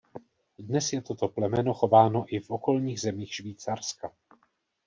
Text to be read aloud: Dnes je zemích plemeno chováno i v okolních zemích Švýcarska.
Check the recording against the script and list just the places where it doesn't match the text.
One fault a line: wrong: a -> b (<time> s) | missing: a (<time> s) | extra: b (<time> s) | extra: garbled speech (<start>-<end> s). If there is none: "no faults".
wrong: zemích -> toto (1.0 s)